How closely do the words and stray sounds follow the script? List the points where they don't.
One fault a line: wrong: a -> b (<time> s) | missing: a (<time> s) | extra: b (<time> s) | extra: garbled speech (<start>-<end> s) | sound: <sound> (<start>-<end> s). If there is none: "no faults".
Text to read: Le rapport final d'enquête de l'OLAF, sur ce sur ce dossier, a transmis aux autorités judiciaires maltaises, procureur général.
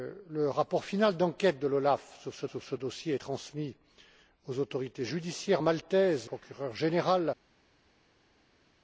no faults